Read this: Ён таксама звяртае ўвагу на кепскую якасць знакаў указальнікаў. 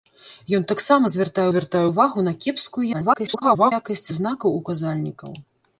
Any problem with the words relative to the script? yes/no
yes